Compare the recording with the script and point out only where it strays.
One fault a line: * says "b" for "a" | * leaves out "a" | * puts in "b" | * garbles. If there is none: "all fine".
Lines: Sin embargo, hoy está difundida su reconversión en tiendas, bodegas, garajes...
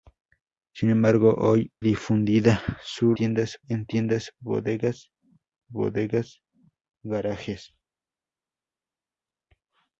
* leaves out "está"
* says "tiendas" for "reconversión"
* puts in "bodegas"